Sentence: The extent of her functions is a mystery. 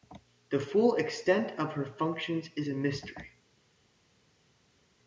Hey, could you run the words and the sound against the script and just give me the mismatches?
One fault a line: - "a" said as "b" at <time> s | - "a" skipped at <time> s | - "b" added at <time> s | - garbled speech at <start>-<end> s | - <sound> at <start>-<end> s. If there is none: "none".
- "full" added at 0.6 s